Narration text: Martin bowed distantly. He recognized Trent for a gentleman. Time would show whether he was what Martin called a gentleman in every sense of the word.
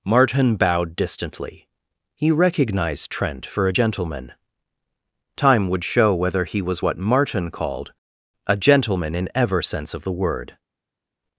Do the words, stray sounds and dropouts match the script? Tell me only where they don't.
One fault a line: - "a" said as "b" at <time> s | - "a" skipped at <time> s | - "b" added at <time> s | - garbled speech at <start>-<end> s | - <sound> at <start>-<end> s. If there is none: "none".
- "every" said as "ever" at 9.3 s